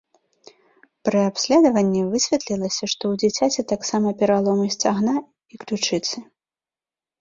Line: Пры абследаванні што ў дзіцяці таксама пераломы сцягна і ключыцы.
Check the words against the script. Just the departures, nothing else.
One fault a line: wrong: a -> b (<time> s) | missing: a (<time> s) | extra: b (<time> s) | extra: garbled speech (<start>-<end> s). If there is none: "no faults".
extra: высветлілася (2.1 s)